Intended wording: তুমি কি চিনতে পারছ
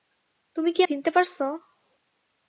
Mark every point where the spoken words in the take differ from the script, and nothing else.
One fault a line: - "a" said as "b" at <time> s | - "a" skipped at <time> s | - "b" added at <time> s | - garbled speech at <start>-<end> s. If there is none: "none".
none